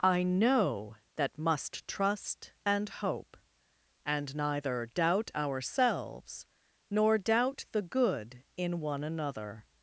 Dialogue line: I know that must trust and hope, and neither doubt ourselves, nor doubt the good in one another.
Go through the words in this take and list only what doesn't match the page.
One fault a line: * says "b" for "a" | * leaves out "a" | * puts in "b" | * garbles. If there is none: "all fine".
all fine